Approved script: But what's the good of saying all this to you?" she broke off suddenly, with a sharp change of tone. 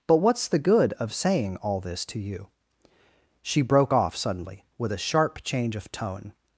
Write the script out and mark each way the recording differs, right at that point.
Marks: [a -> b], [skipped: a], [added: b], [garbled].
But what's the good of saying all this to you?" she broke off suddenly, with a sharp change of tone.